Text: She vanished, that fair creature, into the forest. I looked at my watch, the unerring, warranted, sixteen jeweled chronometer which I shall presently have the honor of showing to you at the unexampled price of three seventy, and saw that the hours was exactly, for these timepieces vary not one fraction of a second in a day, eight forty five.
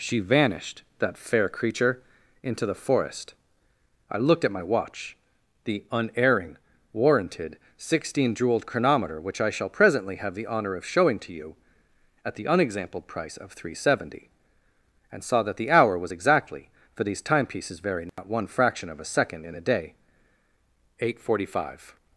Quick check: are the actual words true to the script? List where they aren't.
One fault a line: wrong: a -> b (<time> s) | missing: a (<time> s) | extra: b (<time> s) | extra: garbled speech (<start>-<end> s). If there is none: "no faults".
wrong: hours -> hour (15.7 s)